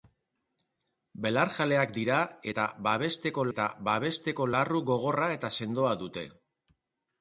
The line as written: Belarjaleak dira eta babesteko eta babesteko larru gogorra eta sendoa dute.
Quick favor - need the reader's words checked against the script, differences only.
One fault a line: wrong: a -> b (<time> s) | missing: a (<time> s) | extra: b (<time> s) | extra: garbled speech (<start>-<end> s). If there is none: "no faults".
no faults